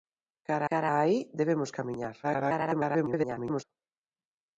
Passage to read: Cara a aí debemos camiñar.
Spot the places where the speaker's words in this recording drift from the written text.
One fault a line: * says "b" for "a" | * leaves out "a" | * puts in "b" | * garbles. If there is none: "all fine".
* puts in "cara"
* garbles